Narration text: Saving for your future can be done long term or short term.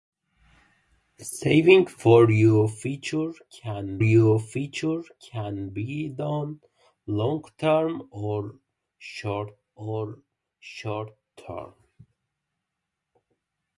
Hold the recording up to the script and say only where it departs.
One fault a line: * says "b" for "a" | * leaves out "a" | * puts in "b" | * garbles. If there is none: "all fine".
* puts in "your future can"
* puts in "or short"